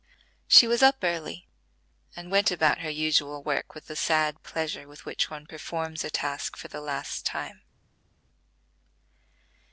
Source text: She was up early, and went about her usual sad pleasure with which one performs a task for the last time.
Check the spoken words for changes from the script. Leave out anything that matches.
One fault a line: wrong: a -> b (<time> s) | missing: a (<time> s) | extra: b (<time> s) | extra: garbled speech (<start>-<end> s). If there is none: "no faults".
extra: work with the (3.4 s)